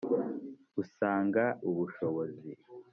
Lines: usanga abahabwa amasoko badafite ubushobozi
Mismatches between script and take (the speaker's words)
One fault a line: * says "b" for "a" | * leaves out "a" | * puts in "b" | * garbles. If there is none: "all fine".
* leaves out "abahabwa amasoko badafite"